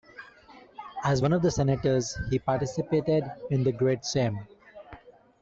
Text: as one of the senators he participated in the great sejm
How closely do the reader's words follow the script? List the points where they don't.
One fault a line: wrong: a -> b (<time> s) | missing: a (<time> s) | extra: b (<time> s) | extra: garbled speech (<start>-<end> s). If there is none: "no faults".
no faults